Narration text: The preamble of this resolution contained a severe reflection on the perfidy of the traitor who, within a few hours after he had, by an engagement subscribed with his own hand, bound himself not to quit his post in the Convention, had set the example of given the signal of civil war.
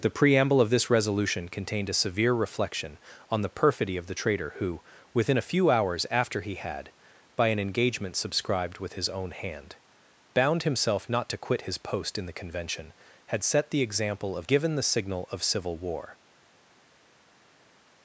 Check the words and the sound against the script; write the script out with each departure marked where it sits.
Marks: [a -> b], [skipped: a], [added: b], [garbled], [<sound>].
The preamble of this resolution contained a severe reflection on the perfidy of the traitor who, within a few hours after he had, by an engagement subscribed with his own hand, bound himself not to quit his post in the Convention, had set the example of given the signal of civil war.